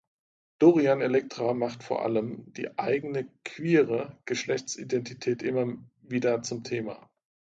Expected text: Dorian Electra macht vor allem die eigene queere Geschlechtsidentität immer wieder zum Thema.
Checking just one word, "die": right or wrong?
right